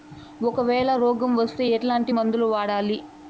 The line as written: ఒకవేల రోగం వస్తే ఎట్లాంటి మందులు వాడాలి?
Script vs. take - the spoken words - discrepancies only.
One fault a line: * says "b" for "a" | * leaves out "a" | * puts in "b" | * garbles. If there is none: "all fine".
all fine